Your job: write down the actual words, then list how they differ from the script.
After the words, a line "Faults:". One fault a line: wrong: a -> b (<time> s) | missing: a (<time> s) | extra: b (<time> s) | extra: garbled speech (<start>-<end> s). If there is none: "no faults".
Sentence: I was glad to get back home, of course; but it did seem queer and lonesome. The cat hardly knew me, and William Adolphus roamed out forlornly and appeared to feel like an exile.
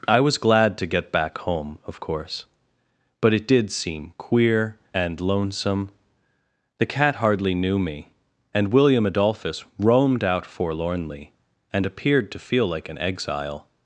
I was glad to get back home, of course; but it did seem queer and lonesome. The cat hardly knew me, and William Adolphus roamed out forlornly and appeared to feel like an exile.
Faults:
no faults